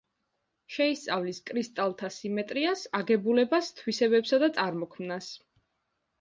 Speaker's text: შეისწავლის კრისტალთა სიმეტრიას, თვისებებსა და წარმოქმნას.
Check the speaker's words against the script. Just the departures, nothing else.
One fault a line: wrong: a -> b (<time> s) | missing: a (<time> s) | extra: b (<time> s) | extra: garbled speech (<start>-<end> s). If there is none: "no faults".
extra: აგებულებას (3.0 s)